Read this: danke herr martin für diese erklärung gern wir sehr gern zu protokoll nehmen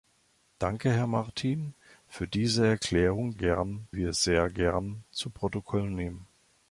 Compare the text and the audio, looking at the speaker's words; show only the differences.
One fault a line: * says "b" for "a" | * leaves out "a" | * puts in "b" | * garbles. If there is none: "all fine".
all fine